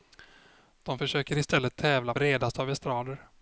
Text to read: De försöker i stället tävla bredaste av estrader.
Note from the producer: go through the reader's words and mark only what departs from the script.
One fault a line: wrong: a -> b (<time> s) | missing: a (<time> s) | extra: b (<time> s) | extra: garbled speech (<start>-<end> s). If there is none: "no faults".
no faults